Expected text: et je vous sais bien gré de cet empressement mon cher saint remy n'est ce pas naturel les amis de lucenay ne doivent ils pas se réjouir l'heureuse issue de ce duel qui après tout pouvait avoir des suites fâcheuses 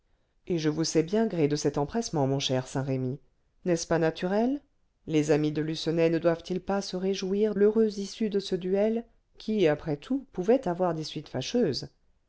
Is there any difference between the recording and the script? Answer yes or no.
no